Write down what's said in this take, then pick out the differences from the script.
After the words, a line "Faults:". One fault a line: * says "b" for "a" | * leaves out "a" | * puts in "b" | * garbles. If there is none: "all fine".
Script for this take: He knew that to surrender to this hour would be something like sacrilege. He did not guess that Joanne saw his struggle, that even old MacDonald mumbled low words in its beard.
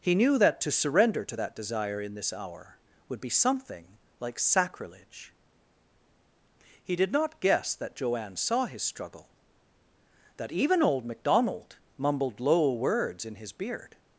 He knew that to surrender to that desire in this hour would be something like sacrilege. He did not guess that Joanne saw his struggle, that even old MacDonald mumbled low words in his beard.
Faults:
* puts in "that desire in"
* says "his" for "its"